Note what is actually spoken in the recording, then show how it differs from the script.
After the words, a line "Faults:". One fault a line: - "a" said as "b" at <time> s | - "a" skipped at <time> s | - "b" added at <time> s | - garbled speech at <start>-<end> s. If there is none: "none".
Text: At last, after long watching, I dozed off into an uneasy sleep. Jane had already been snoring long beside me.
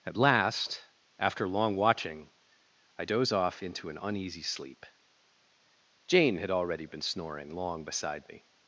At last, after long watching, I doze off into an uneasy sleep. Jane had already been snoring long beside me.
Faults:
- "dozed" said as "doze" at 3.0 s